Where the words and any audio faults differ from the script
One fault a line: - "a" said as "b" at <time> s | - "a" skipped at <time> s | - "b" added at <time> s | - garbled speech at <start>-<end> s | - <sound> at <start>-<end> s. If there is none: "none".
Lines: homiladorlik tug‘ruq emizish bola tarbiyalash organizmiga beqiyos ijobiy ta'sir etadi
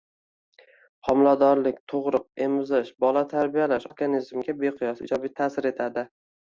none